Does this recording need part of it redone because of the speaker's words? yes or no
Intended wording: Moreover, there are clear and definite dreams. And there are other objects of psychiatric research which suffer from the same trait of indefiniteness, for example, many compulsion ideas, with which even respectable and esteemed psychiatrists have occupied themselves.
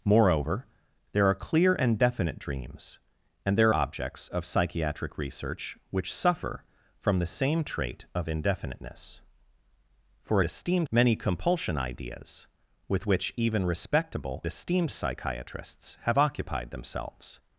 yes